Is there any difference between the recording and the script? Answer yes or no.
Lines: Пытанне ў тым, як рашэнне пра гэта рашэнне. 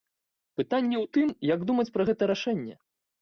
yes